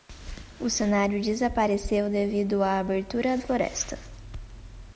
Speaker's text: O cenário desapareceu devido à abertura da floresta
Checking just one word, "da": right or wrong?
wrong